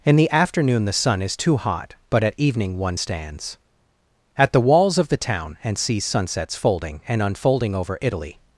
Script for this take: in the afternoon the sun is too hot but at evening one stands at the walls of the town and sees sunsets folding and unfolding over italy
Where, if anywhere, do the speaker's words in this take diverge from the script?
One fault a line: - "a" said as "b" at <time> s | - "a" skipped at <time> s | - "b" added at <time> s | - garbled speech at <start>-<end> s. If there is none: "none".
none